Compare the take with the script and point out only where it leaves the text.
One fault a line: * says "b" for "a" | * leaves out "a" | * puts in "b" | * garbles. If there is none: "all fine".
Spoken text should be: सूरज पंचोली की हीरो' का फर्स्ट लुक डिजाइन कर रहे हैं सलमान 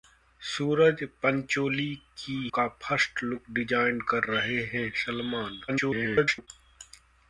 * leaves out "हीरो"
* garbles